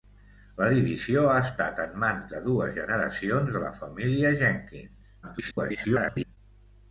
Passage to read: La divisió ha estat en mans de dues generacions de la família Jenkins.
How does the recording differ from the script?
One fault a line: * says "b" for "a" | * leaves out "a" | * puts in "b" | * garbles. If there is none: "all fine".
* garbles